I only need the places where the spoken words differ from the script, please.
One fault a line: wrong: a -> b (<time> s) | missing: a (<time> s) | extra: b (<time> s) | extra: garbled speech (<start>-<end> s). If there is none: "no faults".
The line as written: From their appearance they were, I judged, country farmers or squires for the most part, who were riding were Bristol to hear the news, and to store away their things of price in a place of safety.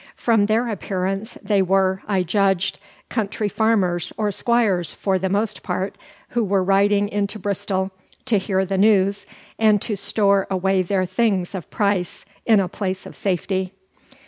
wrong: were -> into (7.1 s)